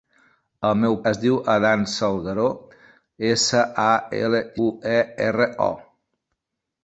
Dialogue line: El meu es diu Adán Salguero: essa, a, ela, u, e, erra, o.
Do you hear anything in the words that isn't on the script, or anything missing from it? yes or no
no